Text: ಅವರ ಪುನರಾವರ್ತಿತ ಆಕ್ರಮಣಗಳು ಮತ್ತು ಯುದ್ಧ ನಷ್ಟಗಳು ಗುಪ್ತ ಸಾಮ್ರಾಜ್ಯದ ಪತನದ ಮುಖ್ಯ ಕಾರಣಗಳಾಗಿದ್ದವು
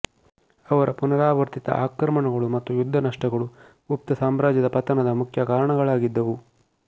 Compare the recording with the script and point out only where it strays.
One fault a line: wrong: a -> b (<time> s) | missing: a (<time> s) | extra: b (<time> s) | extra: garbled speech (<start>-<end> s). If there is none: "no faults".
no faults